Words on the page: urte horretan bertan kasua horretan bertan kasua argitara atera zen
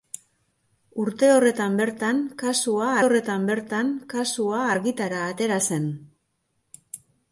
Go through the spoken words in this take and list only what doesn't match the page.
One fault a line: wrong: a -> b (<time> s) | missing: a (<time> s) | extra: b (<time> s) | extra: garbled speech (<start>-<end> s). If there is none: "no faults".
no faults